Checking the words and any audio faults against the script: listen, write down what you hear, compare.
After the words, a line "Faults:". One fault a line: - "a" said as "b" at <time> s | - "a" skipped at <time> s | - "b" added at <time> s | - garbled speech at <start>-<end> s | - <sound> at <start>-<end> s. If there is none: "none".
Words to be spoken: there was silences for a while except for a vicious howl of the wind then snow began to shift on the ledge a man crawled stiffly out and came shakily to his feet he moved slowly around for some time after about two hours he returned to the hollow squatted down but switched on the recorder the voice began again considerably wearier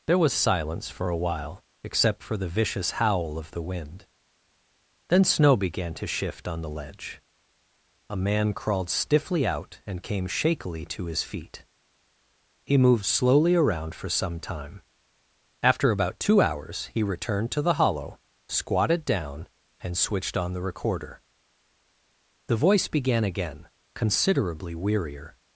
there was silence for a while except for the vicious howl of the wind then snow began to shift on the ledge a man crawled stiffly out and came shakily to his feet he moved slowly around for some time after about two hours he returned to the hollow squatted down and switched on the recorder the voice began again considerably wearier
Faults:
- "silences" said as "silence" at 0.3 s
- "a" said as "the" at 2.4 s
- "but" said as "and" at 19.8 s